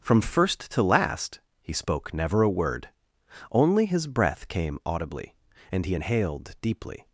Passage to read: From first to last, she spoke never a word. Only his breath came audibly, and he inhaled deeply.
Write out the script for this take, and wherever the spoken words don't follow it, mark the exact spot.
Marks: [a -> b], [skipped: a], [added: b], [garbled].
From first to last, [she -> he] spoke never a word. Only his breath came audibly, and he inhaled deeply.